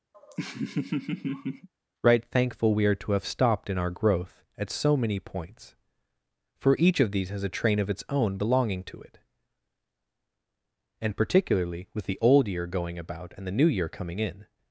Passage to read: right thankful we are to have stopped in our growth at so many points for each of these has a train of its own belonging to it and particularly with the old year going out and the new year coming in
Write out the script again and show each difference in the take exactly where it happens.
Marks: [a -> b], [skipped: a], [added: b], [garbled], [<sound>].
[laugh] right thankful we are to have stopped in our growth at so many points for each of these has a train of its own belonging to it and particularly with the old year going [out -> about] and the new year coming in